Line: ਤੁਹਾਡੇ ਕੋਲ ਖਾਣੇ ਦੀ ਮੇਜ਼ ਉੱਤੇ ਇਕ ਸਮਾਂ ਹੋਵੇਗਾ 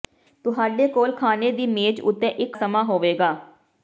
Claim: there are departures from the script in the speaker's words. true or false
false